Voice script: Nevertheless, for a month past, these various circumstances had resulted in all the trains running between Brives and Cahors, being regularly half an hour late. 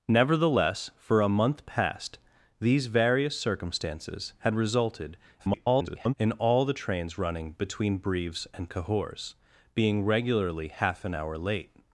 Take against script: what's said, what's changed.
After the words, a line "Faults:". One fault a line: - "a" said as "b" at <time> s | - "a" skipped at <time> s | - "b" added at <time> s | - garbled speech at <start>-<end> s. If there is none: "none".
Nevertheless, for a month past, these various circumstances had resulted [garbled] in all the trains running between Brives and Cahors, being regularly half an hour late.
Faults:
- garbled speech at 5.4-6.1 s